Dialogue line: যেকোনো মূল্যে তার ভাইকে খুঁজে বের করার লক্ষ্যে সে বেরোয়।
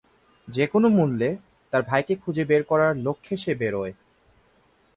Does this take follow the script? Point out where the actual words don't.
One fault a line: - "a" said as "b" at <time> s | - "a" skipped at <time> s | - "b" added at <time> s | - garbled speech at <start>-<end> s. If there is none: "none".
none